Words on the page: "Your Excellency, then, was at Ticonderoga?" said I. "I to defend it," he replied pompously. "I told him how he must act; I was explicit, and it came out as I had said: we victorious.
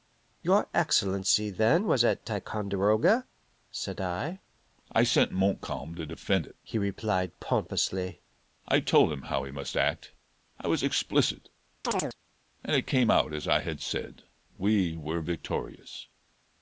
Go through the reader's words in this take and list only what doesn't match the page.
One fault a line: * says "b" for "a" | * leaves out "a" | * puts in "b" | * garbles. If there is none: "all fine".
* puts in "sent Montcalm"
* puts in "were"